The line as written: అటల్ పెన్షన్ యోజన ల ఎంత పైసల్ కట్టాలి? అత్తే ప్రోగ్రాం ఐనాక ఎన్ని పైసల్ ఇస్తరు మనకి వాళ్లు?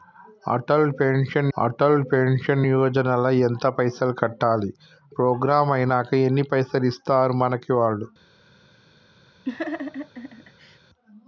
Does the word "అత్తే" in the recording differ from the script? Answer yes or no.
yes